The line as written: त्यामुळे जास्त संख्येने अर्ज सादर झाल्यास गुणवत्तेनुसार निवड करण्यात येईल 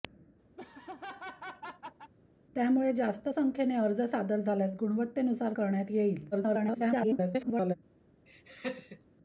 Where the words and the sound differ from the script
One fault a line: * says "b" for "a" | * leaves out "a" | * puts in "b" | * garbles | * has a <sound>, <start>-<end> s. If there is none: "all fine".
* has a laugh, 0.6-2.1 s
* leaves out "निवड"
* garbles
* has a laugh, 8.3-9.0 s